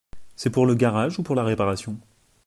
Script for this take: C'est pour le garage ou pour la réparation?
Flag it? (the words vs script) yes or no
no